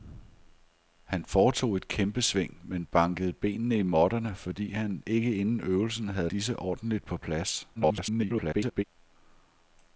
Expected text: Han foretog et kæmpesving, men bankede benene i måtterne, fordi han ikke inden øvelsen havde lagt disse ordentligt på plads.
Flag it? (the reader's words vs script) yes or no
yes